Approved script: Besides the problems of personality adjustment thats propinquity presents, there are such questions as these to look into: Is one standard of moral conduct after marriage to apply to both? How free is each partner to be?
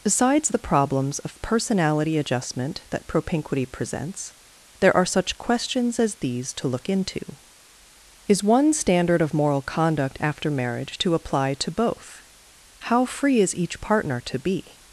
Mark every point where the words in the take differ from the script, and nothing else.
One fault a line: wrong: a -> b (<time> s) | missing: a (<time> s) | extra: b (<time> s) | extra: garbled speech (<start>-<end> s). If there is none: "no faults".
wrong: thats -> that (2.9 s)